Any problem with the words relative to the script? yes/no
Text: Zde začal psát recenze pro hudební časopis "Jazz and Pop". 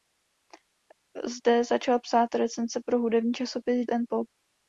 yes